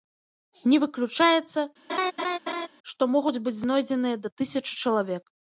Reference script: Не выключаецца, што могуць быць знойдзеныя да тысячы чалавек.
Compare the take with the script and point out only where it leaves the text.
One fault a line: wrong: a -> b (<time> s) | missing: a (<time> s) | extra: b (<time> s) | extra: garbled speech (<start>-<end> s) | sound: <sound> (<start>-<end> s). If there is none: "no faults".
sound: laugh (1.9-2.7 s)